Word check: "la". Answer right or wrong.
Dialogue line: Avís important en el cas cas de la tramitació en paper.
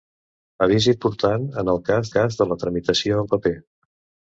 right